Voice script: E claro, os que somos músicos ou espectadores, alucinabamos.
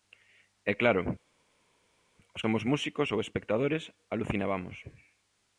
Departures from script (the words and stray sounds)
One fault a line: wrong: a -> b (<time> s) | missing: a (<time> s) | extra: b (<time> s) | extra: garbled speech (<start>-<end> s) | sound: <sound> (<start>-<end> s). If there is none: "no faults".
missing: que (2.4 s)